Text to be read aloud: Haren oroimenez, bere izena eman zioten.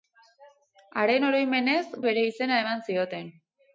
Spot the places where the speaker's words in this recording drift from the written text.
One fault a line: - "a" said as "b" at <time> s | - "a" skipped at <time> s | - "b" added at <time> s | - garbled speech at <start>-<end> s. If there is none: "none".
none